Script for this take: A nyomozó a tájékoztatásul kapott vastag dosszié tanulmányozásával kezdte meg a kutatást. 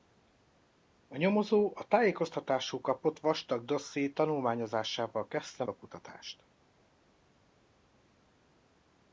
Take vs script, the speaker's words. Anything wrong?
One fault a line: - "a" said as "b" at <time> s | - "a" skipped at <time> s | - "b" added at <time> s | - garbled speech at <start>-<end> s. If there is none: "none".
- "meg" skipped at 5.6 s